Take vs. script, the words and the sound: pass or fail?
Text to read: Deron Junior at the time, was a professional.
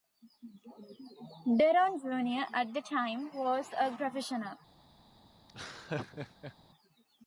fail